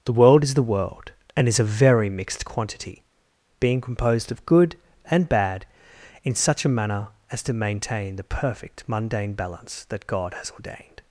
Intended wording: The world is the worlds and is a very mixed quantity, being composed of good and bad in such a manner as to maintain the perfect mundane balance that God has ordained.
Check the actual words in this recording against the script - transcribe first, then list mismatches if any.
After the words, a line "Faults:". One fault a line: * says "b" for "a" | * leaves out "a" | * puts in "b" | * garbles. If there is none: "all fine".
The world is the world and is a very mixed quantity, being composed of good and bad in such a manner as to maintain the perfect mundane balance that God has ordained.
Faults:
* says "world" for "worlds"